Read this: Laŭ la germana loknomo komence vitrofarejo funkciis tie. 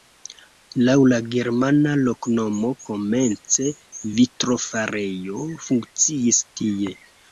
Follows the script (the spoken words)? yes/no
yes